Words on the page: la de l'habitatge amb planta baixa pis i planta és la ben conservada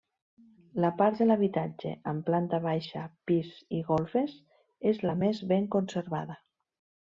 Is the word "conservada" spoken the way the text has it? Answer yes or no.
yes